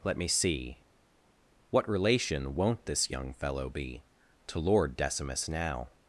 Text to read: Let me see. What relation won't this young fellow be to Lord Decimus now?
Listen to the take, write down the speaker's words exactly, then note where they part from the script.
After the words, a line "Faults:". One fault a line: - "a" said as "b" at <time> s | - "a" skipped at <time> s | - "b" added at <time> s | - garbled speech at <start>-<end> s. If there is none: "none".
Let me see. What relation won't this young fellow be to Lord Decimus now?
Faults:
none